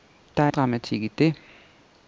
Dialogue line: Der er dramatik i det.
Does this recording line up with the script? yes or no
yes